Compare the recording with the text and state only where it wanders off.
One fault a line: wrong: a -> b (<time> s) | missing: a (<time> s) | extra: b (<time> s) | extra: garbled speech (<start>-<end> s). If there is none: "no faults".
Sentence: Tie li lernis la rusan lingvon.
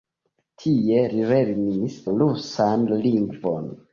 missing: la (2.0 s)